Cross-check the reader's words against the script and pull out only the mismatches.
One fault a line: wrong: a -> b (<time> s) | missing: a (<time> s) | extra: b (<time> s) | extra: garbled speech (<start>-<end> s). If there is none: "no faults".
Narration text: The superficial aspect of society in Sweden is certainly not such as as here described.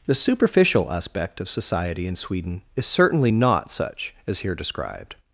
missing: as (4.4 s)